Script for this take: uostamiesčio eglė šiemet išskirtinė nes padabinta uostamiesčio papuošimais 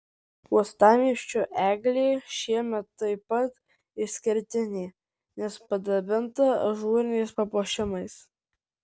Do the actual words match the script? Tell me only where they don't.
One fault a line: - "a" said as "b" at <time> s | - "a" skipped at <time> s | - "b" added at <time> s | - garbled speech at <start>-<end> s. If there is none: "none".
- "taip pat" added at 3.0 s
- "uostamiesčio" said as "ažūriniais" at 6.7 s